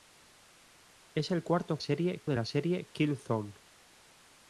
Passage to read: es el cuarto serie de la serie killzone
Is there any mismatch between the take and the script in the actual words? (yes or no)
no